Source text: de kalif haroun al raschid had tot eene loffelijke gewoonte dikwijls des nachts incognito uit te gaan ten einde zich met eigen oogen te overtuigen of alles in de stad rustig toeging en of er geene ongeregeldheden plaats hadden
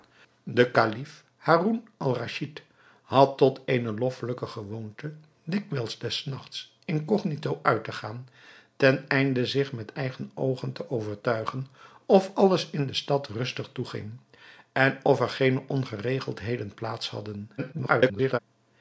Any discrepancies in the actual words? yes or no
yes